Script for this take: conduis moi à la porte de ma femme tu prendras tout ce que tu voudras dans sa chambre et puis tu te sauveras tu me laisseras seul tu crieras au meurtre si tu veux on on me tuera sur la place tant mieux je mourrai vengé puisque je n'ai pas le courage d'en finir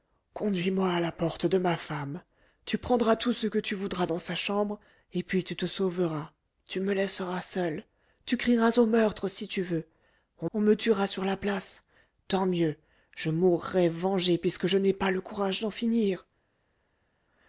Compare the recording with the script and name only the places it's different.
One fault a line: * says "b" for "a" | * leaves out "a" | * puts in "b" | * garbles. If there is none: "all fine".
all fine